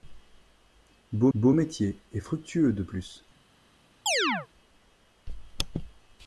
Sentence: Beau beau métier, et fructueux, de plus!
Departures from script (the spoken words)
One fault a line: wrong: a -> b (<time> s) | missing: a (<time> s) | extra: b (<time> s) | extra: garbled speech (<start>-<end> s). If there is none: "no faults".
no faults